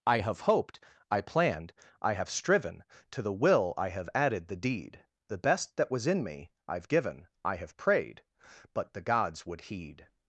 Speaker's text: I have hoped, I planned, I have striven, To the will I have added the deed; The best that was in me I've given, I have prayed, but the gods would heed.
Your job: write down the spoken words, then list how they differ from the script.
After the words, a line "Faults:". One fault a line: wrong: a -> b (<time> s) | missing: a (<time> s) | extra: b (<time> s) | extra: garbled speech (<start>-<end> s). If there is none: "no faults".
I have hoped, I planned, I have striven, To the will I have added the deed; The best that was in me I've given, I have prayed, but the gods would heed.
Faults:
no faults